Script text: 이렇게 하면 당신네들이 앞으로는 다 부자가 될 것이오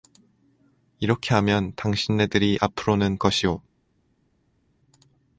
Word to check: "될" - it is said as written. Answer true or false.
false